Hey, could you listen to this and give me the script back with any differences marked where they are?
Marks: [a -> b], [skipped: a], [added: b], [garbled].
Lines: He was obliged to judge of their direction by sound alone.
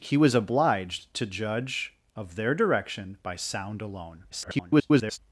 He was obliged to judge of their direction by sound alone. [garbled]